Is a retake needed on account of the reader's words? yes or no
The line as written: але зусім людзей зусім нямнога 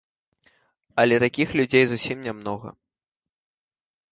yes